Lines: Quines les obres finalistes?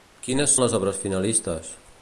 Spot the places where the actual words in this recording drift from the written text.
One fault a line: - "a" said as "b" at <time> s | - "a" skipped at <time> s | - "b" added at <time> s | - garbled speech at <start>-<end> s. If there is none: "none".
none